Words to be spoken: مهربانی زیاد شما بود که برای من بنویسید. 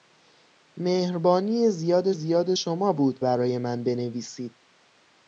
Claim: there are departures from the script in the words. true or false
true